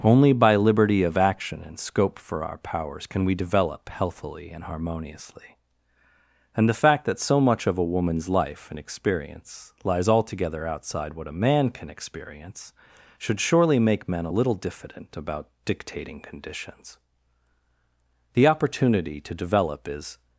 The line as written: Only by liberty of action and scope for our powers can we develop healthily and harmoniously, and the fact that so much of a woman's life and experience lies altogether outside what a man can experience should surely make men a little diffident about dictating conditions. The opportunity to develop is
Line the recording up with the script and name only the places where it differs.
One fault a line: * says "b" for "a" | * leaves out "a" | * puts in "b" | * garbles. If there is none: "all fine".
all fine